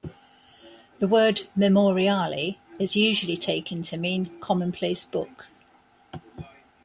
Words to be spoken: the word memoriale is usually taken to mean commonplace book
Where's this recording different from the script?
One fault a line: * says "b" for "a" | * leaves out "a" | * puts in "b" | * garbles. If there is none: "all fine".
all fine